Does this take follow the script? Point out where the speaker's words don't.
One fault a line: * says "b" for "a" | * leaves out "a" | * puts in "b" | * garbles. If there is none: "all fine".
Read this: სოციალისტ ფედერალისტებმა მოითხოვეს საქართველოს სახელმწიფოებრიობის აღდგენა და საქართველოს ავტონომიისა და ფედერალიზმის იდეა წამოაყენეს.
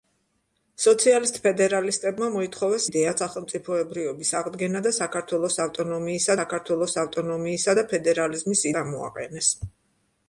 * says "იდეა" for "საქართველოს"
* puts in "საქართველოს ავტონომიისა"
* leaves out "იდეა"